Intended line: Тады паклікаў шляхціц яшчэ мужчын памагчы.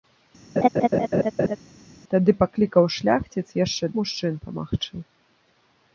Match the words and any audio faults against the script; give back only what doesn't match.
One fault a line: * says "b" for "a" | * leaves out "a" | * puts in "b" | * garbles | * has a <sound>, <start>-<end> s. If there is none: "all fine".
* has a laugh, 0.6-1.6 s